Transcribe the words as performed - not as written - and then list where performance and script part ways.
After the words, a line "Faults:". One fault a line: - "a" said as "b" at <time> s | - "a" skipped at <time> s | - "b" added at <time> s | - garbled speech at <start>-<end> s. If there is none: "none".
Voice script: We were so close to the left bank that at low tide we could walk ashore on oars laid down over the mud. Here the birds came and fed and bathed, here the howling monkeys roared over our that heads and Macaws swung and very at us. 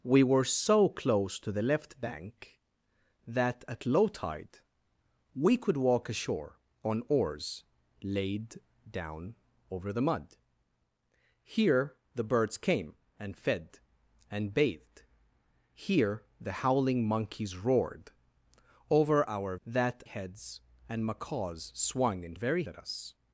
We were so close to the left bank that at low tide we could walk ashore on oars laid down over the mud. Here the birds came and fed and bathed, here the howling monkeys roared over our that heads and Macaws swung and very at us.
Faults:
none